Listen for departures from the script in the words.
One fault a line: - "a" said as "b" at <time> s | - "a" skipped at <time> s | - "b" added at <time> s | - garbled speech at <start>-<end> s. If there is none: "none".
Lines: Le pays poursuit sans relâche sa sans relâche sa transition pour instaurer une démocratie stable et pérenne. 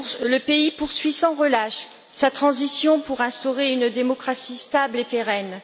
- "sans relâche sa" skipped at 2.3 s